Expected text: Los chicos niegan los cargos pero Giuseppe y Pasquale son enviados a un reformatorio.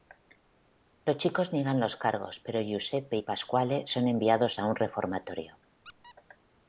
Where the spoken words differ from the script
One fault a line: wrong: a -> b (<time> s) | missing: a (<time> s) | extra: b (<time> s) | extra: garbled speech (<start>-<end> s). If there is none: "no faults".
no faults